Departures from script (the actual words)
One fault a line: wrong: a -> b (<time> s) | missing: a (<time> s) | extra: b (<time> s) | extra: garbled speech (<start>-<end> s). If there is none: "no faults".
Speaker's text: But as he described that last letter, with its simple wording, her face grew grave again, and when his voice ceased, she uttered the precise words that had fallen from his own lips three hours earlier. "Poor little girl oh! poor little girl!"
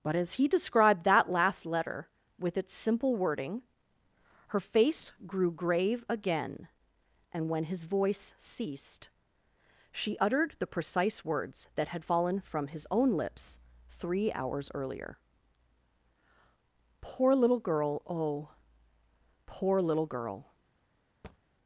no faults